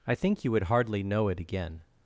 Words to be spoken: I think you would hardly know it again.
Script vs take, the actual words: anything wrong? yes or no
no